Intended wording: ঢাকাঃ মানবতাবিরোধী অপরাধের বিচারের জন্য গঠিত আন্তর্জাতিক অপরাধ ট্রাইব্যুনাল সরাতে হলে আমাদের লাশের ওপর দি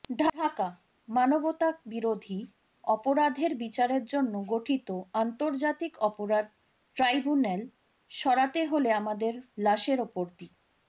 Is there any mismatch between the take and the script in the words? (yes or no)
no